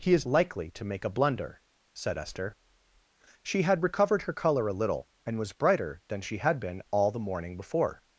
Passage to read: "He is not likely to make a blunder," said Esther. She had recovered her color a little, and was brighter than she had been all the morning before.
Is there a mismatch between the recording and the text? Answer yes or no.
yes